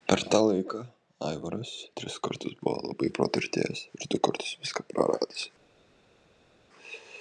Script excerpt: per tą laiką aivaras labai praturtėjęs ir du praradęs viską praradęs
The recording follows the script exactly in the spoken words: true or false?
false